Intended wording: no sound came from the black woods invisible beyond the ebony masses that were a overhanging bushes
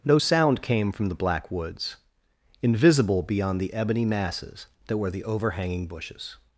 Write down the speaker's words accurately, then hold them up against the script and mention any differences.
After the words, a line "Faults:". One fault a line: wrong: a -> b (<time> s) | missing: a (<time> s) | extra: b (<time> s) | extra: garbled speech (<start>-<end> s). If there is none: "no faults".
no sound came from the black woods invisible beyond the ebony masses that were the overhanging bushes
Faults:
wrong: a -> the (5.1 s)